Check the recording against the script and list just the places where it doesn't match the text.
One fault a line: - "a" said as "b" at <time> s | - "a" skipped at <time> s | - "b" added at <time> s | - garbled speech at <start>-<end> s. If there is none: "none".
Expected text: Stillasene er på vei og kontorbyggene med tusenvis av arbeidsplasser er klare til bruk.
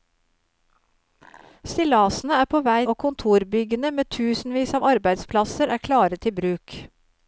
none